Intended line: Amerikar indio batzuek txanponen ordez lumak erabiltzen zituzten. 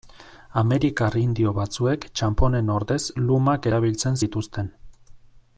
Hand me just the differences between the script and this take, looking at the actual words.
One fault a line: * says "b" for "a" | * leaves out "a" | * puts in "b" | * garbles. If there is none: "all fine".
all fine